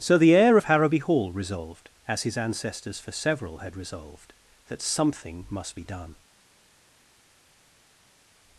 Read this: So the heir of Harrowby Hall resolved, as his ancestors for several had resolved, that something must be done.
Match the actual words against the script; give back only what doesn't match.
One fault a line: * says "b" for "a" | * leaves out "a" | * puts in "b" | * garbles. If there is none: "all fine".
all fine